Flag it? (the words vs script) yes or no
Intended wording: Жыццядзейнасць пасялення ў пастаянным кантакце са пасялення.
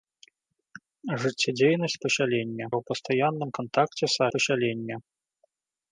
no